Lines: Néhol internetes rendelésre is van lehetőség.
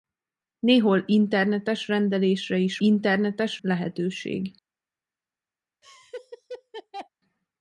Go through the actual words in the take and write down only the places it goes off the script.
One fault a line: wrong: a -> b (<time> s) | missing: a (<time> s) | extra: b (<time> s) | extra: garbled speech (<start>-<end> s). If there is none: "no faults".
wrong: van -> internetes (2.8 s)